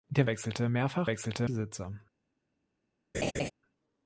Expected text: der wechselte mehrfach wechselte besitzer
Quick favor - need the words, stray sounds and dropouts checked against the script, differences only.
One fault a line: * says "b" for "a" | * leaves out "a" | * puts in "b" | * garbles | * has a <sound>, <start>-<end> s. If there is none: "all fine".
* has a laugh, 3.1-3.5 s